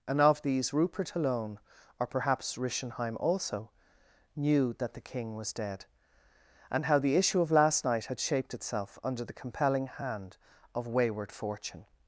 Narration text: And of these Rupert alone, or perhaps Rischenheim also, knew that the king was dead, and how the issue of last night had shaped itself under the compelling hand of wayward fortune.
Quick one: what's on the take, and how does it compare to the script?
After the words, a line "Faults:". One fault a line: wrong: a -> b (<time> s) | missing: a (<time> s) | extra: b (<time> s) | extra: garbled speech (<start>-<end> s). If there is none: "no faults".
And of these Rupert alone, or perhaps Rischenheim also, knew that the king was dead, and how the issue of last night had shaped itself under the compelling hand of wayward fortune.
Faults:
no faults